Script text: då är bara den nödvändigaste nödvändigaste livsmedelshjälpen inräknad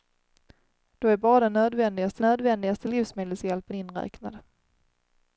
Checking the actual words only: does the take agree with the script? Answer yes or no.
yes